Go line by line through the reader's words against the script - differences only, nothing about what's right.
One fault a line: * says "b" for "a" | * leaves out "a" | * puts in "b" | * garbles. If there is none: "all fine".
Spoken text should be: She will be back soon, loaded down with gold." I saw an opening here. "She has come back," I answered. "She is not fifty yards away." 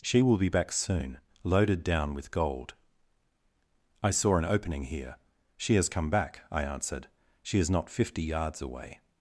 all fine